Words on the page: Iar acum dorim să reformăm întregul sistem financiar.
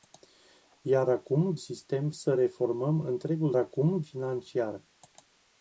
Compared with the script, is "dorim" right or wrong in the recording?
wrong